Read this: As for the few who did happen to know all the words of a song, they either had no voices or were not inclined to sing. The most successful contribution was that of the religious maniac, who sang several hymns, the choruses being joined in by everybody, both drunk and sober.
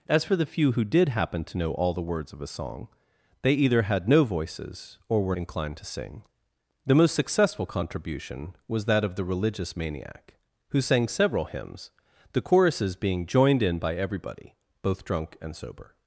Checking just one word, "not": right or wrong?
wrong